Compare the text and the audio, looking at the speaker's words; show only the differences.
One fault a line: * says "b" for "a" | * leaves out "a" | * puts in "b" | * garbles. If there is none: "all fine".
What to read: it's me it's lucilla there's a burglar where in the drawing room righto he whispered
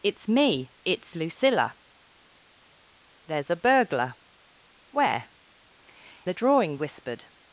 * leaves out "in"
* leaves out "room righto he"